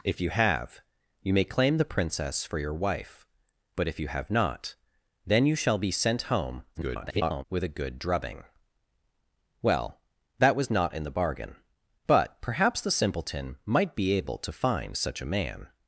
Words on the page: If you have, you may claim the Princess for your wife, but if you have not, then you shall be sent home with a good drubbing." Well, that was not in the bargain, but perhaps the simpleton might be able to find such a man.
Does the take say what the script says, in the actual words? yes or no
no